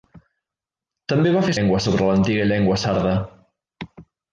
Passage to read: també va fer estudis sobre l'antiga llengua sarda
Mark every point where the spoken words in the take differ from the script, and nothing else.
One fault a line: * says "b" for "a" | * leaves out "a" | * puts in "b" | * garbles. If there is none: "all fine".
* says "llengua" for "estudis"